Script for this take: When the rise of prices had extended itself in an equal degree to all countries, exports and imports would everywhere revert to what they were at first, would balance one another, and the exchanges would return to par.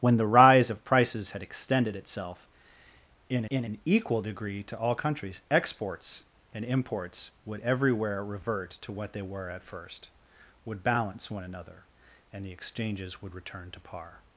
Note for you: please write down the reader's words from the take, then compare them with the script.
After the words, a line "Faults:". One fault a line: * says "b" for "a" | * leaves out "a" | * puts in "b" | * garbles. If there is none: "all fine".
When the rise of prices had extended itself in in an equal degree to all countries, exports and imports would everywhere revert to what they were at first, would balance one another, and the exchanges would return to par.
Faults:
* puts in "in"